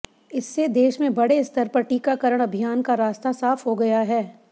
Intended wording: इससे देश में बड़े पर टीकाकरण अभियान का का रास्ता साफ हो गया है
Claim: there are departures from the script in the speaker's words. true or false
true